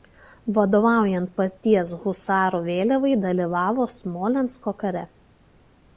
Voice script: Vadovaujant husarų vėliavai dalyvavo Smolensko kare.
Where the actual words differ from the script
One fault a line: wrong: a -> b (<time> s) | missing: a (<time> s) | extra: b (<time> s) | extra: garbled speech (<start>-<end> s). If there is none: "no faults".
extra: paties (1.4 s)